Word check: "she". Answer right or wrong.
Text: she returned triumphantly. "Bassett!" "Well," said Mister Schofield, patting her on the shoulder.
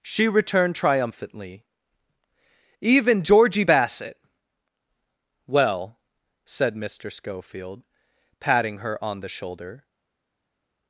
right